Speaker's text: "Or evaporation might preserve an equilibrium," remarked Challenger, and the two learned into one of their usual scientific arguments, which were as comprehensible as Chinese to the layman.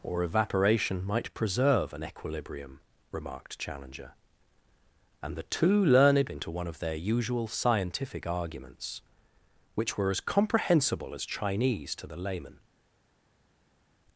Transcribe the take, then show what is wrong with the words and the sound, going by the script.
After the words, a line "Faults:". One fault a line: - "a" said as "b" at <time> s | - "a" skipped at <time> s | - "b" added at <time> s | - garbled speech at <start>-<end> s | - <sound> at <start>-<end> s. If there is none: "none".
"Or evaporation might preserve an equilibrium," remarked Challenger, and the two learned into one of their usual scientific arguments, which were as comprehensible as Chinese to the layman.
Faults:
none